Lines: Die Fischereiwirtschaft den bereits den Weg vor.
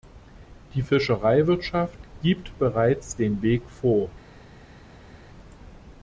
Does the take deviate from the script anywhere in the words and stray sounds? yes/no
yes